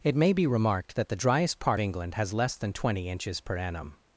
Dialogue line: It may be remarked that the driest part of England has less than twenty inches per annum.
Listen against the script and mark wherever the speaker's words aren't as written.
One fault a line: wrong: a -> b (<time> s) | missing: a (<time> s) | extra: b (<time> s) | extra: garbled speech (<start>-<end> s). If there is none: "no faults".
missing: of (1.8 s)